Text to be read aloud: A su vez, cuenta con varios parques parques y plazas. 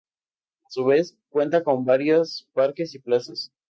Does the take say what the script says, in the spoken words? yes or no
no